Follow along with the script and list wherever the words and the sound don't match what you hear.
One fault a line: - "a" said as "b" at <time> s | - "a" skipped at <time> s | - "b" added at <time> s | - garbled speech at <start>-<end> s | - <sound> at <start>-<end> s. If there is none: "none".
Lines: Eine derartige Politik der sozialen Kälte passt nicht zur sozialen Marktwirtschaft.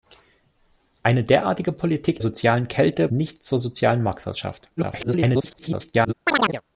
- "der" skipped at 2.2 s
- "passt" skipped at 3.1 s
- garbled speech at 4.8-6.1 s
- chirp at 6.3-6.6 s